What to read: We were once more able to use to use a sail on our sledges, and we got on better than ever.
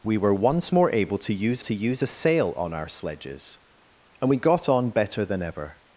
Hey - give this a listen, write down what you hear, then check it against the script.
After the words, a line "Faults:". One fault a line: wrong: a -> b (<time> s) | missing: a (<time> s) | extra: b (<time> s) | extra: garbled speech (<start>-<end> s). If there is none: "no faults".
We were once more able to use to use a sail on our sledges, and we got on better than ever.
Faults:
no faults